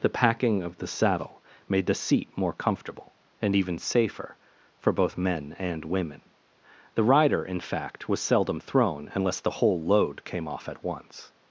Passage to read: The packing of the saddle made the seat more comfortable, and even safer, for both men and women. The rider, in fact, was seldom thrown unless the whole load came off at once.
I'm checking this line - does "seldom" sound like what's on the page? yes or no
yes